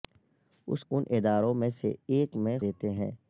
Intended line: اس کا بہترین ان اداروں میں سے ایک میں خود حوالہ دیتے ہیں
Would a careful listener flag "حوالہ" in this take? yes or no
yes